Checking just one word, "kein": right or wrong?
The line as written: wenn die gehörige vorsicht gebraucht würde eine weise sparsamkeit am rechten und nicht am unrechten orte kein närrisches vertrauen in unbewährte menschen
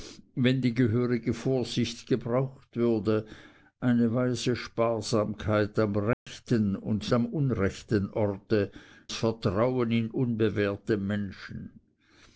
wrong